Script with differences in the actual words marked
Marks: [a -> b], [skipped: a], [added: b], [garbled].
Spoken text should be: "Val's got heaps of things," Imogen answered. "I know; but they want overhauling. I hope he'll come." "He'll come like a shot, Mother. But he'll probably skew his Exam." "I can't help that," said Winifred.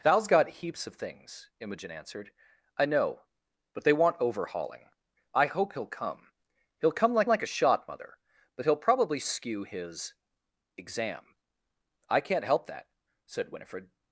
"Val's got heaps of things," Imogen answered. "I know; but they want overhauling. I hope he'll come." "He'll come like [added: like] a shot, Mother. But he'll probably skew his Exam." "I can't help that," said Winifred.